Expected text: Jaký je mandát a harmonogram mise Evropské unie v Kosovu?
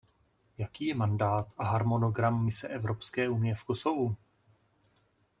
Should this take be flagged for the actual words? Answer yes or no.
no